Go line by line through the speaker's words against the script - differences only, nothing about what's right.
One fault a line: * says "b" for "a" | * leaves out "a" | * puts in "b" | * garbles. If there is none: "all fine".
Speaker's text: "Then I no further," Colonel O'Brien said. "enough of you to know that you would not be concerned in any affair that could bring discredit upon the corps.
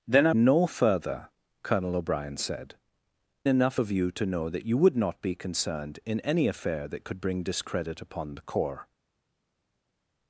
all fine